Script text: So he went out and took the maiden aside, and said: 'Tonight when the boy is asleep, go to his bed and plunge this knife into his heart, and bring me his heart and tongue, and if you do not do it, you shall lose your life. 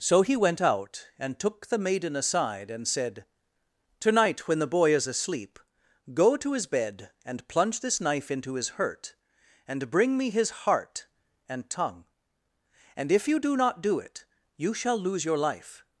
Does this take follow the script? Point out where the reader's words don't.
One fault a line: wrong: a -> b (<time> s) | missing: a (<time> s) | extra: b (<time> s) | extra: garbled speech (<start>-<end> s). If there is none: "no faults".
wrong: heart -> hurt (8.7 s)